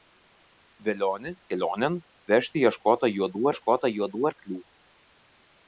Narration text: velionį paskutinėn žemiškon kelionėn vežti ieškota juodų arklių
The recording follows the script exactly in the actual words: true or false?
false